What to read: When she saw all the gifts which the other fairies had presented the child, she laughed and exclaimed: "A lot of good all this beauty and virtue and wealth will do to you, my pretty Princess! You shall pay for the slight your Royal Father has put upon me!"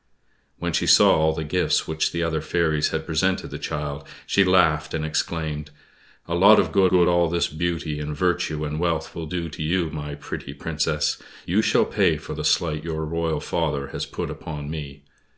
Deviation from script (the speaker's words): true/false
true